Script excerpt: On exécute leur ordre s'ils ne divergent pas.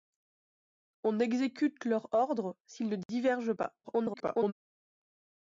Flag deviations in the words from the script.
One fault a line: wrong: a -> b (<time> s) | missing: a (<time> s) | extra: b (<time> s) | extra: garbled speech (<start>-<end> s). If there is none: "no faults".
extra: garbled speech (3.8-4.5 s)